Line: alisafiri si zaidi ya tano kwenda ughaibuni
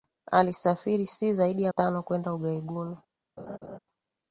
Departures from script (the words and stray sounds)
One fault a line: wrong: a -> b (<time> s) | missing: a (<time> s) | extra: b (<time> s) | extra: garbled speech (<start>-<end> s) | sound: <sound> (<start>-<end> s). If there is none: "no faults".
sound: laugh (3.4-3.8 s)